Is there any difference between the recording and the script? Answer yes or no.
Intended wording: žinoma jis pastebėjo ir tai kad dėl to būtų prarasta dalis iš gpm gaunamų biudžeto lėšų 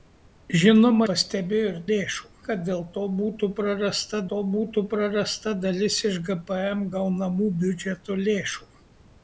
yes